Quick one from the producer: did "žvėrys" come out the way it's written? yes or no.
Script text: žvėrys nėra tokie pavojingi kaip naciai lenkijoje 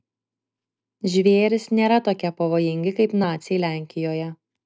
yes